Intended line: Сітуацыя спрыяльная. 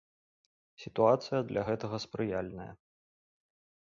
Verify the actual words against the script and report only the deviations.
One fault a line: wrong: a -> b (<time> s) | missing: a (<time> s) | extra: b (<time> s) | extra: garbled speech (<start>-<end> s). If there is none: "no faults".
extra: для гэтага (1.5 s)